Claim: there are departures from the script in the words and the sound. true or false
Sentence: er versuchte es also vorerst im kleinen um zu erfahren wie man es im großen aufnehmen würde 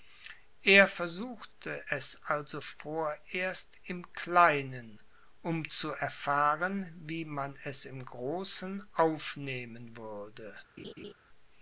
true